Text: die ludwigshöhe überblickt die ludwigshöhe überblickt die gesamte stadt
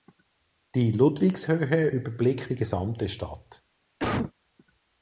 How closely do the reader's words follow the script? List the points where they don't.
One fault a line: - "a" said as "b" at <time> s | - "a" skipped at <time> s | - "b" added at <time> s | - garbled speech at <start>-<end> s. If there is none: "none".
- "ludwigshöhe überblickt die" skipped at 2.5 s